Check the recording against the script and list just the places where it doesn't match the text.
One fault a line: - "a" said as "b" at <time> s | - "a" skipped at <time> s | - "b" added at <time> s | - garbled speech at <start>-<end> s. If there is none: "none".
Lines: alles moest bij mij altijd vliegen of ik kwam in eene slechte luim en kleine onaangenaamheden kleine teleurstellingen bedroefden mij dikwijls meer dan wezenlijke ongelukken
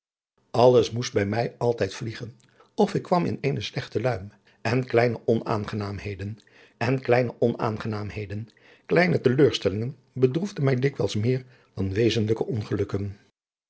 - "en kleine onaangenaamheden" added at 6.8 s